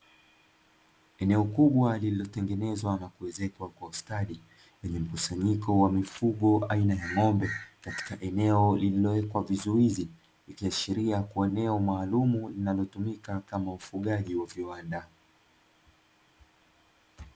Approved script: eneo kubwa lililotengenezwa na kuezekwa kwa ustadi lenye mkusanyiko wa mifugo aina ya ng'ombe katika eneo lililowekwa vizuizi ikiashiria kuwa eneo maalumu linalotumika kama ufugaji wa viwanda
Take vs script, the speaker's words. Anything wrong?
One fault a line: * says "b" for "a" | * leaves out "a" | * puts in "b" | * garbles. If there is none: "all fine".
all fine